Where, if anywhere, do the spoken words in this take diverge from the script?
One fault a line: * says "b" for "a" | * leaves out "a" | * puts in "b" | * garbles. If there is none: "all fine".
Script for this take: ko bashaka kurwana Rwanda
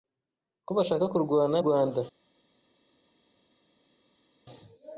all fine